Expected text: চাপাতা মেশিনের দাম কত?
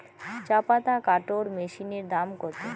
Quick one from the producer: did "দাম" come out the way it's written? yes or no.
yes